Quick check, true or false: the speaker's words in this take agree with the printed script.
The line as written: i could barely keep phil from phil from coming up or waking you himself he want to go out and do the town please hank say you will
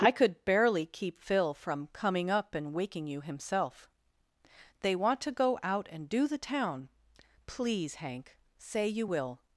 false